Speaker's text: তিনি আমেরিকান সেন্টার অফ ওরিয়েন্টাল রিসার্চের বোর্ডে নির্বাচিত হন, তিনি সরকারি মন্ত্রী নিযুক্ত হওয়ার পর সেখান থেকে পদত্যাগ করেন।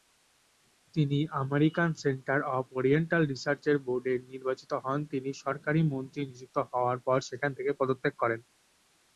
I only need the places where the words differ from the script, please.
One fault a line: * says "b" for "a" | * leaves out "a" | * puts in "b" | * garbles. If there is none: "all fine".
all fine